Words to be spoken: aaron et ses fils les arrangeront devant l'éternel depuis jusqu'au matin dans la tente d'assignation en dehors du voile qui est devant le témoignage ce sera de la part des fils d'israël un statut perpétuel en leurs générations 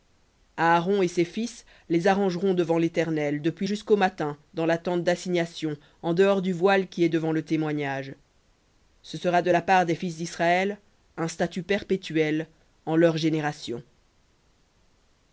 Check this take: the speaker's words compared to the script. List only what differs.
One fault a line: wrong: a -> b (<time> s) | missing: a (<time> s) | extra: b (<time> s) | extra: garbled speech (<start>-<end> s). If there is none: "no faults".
no faults